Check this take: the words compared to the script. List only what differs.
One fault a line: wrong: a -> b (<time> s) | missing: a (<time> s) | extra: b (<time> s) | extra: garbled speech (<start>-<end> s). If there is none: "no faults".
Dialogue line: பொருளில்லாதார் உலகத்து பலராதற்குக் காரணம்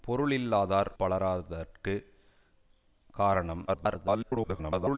missing: உலகத்து (0.9 s)
extra: garbled speech (3.7-5.0 s)